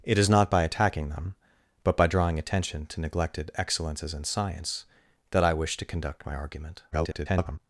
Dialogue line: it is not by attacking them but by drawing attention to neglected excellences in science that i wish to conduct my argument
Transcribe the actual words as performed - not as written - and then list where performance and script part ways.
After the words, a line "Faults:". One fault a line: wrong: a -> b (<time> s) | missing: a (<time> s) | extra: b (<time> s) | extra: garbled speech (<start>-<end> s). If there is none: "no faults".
it is not by attacking them but by drawing attention to neglected excellences in science that i wish to conduct my argument [garbled]
Faults:
extra: garbled speech (6.9-7.6 s)